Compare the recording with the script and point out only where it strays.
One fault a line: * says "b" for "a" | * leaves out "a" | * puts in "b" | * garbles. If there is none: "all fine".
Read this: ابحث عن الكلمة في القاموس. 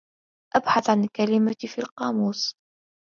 all fine